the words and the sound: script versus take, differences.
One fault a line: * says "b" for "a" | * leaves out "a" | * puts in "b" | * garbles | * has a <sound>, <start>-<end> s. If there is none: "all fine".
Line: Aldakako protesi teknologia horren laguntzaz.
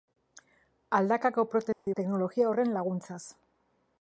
* has a dropout, 1.7-1.9 s